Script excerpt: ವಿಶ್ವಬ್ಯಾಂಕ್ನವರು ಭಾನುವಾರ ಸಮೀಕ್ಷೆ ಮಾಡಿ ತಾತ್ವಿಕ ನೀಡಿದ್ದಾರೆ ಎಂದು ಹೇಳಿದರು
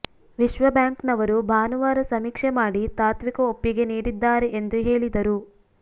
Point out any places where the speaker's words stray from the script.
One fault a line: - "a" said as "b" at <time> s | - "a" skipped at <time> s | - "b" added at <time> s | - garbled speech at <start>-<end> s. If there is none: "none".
- "ಒಪ್ಪಿಗೆ" added at 3.5 s